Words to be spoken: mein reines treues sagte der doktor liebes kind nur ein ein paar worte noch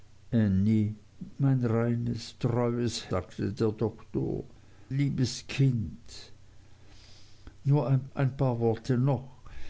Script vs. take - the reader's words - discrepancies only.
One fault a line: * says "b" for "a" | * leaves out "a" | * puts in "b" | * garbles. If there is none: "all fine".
all fine